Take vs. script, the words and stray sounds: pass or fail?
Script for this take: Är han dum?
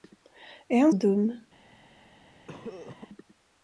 fail